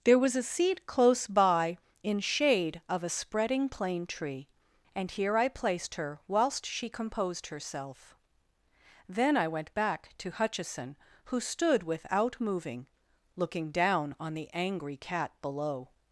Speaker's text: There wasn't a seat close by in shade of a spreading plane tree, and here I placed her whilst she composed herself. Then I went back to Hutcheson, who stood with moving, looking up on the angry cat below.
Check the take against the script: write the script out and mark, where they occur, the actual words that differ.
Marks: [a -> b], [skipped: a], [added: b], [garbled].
There [wasn't -> was] a seat close by in shade of a spreading plane tree, and here I placed her whilst she composed herself. Then I went back to Hutcheson, who stood [with -> without] moving, looking [up -> down] on the angry cat below.